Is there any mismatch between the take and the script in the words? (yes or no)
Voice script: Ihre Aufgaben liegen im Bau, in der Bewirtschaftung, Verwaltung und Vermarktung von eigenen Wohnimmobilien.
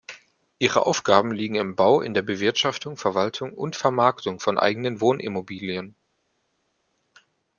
no